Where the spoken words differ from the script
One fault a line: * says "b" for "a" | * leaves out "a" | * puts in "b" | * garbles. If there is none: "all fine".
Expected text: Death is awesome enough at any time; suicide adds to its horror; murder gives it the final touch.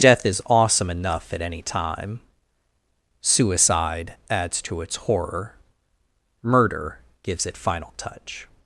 * leaves out "the"